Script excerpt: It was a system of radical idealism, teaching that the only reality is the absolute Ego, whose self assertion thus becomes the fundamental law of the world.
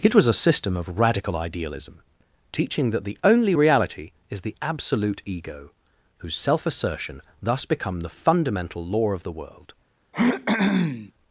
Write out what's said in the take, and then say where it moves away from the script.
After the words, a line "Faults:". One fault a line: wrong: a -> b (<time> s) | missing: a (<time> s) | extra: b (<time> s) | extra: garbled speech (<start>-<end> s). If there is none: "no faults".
It was a system of radical idealism, teaching that the only reality is the absolute Ego, whose self assertion thus become the fundamental law of the world.
Faults:
wrong: becomes -> become (7.6 s)